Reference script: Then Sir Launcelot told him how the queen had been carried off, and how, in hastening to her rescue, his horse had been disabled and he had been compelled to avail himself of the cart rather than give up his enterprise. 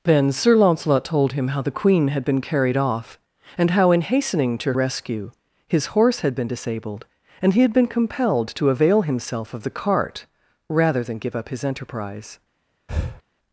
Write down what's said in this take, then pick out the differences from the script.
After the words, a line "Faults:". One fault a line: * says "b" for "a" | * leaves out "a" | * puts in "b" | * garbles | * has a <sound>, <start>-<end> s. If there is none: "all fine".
Then Sir Launcelot told him how the queen had been carried off, and how, in hastening to rescue, his horse had been disabled and he had been compelled to avail himself of the cart rather than give up his enterprise.
Faults:
* leaves out "her"
* has a breath, 12.9-13.2 s